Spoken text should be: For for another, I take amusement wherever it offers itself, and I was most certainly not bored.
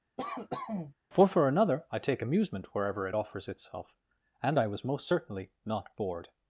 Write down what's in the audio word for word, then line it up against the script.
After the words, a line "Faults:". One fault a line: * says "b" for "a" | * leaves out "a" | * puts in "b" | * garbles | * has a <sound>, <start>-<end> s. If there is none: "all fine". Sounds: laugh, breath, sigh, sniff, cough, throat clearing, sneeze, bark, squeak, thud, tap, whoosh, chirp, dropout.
For for another, I take amusement wherever it offers itself, and I was most certainly not bored.
Faults:
* has a cough, 0.2-0.9 s